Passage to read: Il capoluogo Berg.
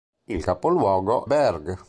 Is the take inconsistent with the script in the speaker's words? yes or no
no